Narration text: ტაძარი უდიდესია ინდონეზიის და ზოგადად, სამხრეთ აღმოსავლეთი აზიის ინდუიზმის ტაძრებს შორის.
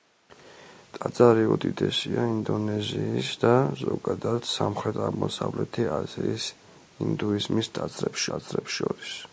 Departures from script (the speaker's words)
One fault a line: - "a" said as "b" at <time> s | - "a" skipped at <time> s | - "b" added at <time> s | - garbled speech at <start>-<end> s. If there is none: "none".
- "ტაძრებს" added at 8.3 s